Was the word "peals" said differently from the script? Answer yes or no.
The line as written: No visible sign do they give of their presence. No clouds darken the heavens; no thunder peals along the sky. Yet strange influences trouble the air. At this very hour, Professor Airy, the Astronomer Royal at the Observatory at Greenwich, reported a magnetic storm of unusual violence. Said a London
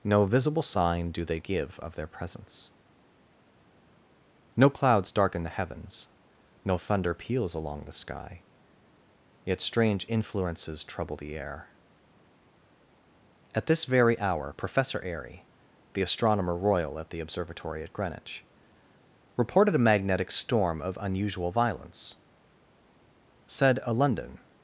no